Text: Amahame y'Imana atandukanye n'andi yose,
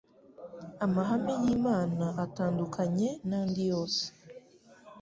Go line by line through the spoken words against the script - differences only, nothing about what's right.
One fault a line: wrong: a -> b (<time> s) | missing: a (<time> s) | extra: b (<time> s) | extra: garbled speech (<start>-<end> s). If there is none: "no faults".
no faults